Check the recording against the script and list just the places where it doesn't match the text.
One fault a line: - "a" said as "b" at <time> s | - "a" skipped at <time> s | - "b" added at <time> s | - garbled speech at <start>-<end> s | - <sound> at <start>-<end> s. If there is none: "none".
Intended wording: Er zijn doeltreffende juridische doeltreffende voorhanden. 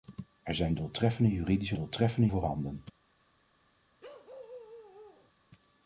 - bark at 4.0-5.3 s